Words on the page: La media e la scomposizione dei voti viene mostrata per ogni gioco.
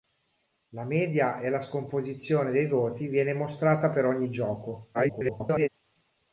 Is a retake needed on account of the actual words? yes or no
yes